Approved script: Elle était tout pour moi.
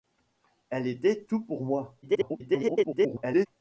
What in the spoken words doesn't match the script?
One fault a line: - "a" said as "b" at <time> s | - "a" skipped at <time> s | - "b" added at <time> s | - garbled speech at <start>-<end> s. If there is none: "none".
- garbled speech at 2.0-3.5 s